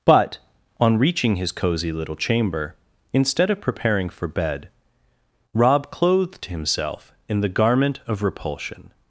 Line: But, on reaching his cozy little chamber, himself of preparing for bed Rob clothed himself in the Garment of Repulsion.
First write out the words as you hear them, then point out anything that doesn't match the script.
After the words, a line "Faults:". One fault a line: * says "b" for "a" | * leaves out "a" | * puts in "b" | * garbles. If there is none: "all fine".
But, on reaching his cozy little chamber, instead of preparing for bed Rob clothed himself in the Garment of Repulsion.
Faults:
* says "instead" for "himself"